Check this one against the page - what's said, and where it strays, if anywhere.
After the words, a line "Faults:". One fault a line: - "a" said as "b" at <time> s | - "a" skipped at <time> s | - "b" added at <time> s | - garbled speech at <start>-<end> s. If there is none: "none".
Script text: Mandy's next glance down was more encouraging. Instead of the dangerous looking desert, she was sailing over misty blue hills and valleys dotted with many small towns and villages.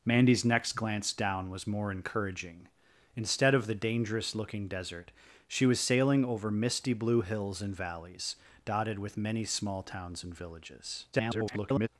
Mandy's next glance down was more encouraging. Instead of the dangerous looking desert, she was sailing over misty blue hills and valleys dotted with many small towns and villages. [garbled]
Faults:
- garbled speech at 11.1-11.9 s